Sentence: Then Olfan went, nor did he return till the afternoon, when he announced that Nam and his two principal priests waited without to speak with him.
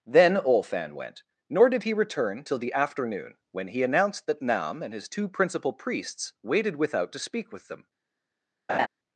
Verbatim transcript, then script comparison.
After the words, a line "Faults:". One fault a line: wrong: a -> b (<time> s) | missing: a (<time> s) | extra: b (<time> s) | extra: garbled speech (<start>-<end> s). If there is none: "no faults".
Then Olfan went, nor did he return till the afternoon, when he announced that Nam and his two principal priests waited without to speak with them.
Faults:
wrong: him -> them (7.7 s)